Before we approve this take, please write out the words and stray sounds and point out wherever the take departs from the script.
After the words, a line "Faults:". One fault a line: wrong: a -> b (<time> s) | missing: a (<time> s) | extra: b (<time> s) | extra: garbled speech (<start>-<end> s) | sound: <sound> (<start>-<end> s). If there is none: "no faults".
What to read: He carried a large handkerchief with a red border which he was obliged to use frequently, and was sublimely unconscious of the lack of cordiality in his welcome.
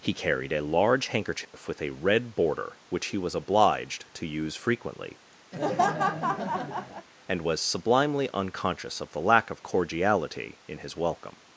He carried a large handkerchief with a red border which he was obliged to use frequently, and was sublimely unconscious of the lack of cordiality in his welcome.
Faults:
sound: dropout (1.4-1.5 s)
sound: laugh (5.5-7.1 s)